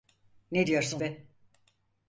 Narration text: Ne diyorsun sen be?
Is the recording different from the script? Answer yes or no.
yes